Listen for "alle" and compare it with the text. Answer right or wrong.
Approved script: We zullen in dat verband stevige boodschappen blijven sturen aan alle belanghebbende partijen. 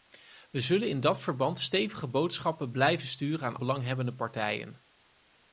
wrong